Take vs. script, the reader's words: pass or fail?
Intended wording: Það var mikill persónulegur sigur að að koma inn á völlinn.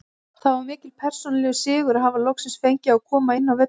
fail